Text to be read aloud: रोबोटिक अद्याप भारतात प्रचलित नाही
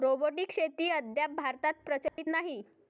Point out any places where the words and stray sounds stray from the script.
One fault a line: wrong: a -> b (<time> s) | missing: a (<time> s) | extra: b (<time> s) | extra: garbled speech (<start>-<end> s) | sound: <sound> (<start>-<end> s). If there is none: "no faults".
extra: शेती (0.5 s)
sound: dropout (2.1-2.2 s)